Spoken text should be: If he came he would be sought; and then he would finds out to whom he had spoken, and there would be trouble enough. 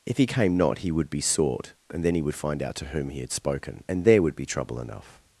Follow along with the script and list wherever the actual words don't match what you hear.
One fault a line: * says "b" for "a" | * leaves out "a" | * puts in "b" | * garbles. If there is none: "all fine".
* puts in "not"
* says "find" for "finds"